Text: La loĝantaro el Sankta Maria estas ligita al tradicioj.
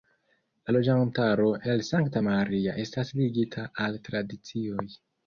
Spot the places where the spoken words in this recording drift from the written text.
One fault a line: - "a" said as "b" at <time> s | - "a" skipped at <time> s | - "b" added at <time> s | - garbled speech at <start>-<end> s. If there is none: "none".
none